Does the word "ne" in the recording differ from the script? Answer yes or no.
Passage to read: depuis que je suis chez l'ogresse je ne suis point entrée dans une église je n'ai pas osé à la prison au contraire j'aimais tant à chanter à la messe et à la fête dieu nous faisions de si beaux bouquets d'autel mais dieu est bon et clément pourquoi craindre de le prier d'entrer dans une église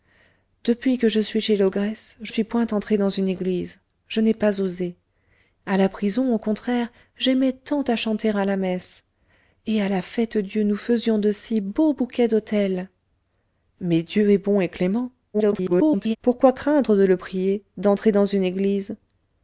yes